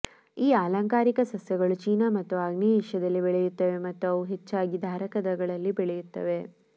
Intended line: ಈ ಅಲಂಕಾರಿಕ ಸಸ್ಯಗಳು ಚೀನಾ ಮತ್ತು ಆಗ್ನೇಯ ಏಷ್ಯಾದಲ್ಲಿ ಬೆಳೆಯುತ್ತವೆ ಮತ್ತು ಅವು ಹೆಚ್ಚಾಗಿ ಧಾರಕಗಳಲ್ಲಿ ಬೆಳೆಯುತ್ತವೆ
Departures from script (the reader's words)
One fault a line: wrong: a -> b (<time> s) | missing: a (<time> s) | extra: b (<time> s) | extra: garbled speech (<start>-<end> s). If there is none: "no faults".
no faults